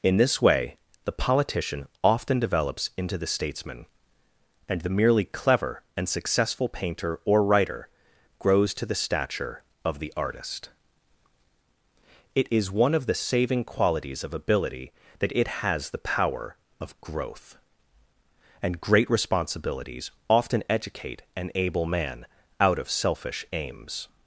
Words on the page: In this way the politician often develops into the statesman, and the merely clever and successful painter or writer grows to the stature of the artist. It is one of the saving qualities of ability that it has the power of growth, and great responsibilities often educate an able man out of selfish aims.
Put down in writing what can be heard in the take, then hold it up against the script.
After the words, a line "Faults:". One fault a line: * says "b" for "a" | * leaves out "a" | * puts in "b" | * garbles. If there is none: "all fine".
In this way the politician often develops into the statesman, and the merely clever and successful painter or writer grows to the stature of the artist. It is one of the saving qualities of ability that it has the power of growth, and great responsibilities often educate an able man out of selfish aims.
Faults:
all fine